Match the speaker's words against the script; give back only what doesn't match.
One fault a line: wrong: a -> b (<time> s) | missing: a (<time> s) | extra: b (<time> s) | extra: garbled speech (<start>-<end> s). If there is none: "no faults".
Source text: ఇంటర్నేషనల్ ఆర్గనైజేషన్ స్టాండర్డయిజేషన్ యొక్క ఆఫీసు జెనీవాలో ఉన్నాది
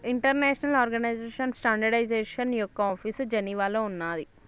no faults